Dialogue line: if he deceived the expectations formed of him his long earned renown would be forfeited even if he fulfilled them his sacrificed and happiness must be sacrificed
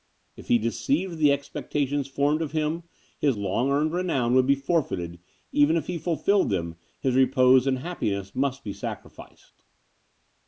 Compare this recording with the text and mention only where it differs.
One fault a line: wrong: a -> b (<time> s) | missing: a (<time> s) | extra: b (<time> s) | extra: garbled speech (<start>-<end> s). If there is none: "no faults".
wrong: sacrificed -> repose (7.2 s)